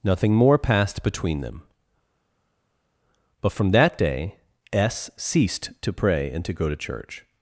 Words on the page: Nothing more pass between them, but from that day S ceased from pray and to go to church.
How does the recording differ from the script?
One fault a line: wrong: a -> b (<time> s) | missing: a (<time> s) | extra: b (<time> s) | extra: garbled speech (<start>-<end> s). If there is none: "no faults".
wrong: pass -> passed (0.6 s)
wrong: from -> to (5.8 s)